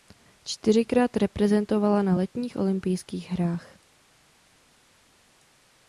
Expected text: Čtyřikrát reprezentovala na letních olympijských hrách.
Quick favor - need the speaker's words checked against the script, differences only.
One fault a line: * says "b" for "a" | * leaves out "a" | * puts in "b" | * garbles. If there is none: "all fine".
all fine